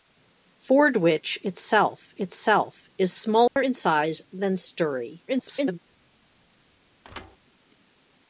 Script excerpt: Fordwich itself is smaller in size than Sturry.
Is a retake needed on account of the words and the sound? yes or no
yes